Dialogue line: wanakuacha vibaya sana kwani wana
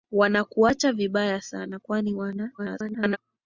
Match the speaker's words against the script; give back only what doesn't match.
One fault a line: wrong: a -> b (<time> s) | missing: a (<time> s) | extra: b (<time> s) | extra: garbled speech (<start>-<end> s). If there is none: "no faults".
extra: garbled speech (2.6-3.2 s)